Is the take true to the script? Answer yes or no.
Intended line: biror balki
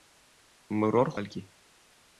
yes